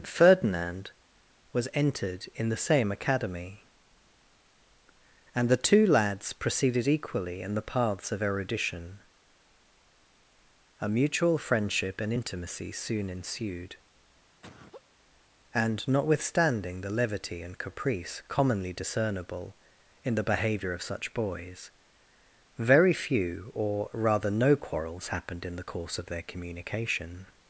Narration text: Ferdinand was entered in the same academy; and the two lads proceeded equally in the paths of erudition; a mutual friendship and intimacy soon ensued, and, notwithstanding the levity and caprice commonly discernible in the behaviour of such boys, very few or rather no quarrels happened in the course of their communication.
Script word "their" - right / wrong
right